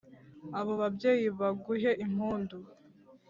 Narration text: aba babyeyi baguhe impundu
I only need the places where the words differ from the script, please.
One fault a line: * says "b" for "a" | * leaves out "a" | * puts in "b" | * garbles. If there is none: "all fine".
* says "abo" for "aba"